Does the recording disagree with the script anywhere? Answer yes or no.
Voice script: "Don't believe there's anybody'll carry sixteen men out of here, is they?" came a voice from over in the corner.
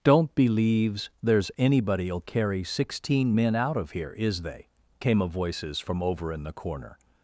yes